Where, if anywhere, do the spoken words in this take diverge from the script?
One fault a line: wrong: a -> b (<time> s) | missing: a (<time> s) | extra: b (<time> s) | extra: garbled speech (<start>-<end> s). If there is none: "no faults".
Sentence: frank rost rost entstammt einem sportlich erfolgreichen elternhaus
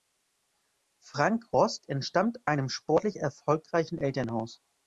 missing: rost (1.9 s)